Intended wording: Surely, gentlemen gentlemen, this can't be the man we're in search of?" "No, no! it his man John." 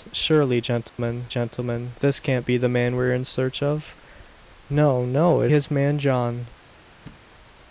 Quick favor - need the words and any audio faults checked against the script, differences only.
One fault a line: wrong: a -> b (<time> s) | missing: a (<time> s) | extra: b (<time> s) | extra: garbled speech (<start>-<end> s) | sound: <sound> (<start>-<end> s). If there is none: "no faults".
sound: dropout (0.9-1.0 s)
sound: thud (7.1-7.3 s)